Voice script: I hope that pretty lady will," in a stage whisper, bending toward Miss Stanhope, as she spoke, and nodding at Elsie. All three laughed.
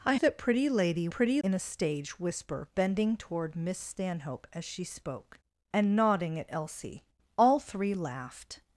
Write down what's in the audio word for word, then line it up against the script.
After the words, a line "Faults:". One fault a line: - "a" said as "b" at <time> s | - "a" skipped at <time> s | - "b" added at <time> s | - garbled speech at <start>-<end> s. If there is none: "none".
I that pretty lady pretty," in a stage whisper, bending toward Miss Stanhope, as she spoke, and nodding at Elsie. All three laughed.
Faults:
- "hope" skipped at 0.1 s
- "will" said as "pretty" at 1.1 s